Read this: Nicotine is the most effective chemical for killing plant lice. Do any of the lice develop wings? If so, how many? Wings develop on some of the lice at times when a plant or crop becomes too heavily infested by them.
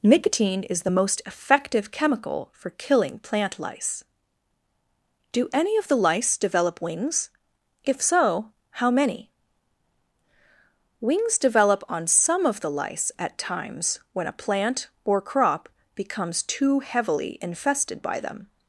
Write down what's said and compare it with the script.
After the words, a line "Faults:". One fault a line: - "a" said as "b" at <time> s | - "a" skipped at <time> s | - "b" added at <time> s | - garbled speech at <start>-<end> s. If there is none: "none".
Nicotine is the most effective chemical for killing plant lice. Do any of the lice develop wings? If so, how many? Wings develop on some of the lice at times when a plant or crop becomes too heavily infested by them.
Faults:
none